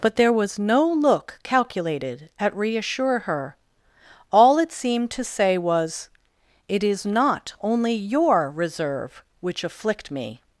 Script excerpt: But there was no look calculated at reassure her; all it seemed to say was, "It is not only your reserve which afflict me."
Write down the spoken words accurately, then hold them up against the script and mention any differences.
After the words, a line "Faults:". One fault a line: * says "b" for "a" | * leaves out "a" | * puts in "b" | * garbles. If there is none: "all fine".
But there was no look calculated at reassure her; all it seemed to say was, "It is not only your reserve which afflict me."
Faults:
all fine